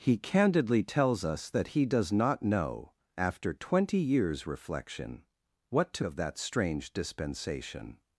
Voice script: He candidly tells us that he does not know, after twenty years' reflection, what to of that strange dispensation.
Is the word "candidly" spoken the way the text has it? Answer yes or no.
yes